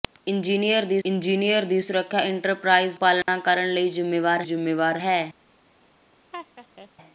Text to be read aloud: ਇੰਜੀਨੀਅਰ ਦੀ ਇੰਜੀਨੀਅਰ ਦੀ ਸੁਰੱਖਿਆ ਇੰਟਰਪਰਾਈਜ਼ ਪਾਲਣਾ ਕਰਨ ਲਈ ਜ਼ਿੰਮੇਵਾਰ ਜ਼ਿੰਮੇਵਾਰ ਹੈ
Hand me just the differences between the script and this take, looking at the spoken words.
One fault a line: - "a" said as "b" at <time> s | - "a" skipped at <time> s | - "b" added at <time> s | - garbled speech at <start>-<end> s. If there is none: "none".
none